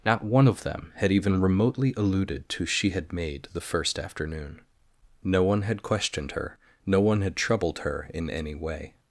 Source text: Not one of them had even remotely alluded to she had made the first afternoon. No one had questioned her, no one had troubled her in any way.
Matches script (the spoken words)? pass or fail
pass